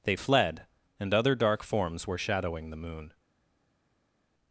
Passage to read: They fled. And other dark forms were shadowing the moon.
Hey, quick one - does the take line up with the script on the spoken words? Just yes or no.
yes